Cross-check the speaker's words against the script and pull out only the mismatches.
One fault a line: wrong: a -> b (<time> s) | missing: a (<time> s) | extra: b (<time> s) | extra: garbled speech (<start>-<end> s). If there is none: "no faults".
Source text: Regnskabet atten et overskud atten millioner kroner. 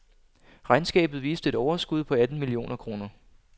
wrong: atten -> viste (1.2 s)
extra: på (2.0 s)